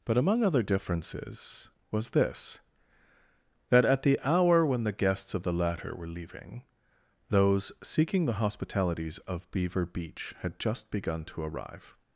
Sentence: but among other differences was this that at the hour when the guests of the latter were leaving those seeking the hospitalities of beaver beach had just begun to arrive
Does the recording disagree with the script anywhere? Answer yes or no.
no